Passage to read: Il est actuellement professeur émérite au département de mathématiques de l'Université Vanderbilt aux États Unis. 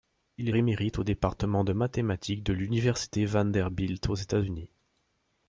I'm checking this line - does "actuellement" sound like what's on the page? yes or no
no